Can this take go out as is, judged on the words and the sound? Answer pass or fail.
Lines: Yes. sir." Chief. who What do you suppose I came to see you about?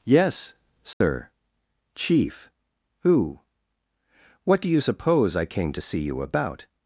fail